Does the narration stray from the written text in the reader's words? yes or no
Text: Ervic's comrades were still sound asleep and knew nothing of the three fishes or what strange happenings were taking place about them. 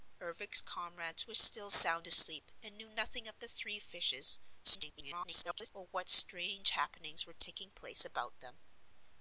yes